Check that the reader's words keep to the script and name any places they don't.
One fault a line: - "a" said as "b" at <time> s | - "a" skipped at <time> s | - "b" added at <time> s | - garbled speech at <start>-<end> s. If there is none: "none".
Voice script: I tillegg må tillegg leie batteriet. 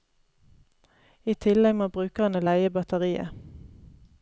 - "tillegg" said as "brukerne" at 2.0 s